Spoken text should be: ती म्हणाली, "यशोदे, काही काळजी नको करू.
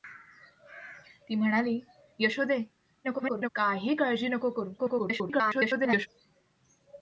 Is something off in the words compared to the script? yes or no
yes